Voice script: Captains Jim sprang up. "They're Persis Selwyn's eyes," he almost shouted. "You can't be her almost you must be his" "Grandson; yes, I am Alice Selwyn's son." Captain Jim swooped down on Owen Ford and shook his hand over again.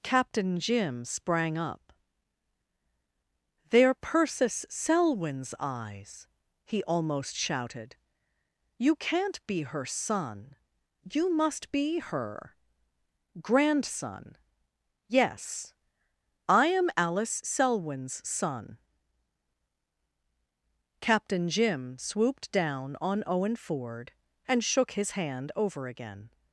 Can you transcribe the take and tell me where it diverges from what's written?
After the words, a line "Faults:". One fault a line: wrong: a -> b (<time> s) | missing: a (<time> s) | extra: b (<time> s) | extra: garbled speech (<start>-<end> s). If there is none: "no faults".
Captain Jim sprang up. "They're Persis Selwyn's eyes," he almost shouted. "You can't be her son you must be her" "Grandson; yes, I am Alice Selwyn's son." Captain Jim swooped down on Owen Ford and shook his hand over again.
Faults:
wrong: Captains -> Captain (0.0 s)
wrong: almost -> son (9.8 s)
wrong: his -> her (12.0 s)